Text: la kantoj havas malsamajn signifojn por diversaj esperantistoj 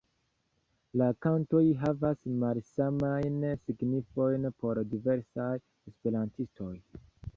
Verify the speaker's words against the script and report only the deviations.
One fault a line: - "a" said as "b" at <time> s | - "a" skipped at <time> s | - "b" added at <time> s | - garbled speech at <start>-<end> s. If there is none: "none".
none